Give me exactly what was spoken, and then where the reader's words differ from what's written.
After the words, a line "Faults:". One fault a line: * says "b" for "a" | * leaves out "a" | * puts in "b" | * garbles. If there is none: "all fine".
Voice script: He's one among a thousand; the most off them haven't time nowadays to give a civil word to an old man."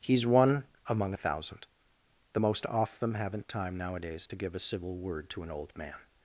He's one among a thousand; the most off them haven't time nowadays to give a civil word to an old man."
Faults:
all fine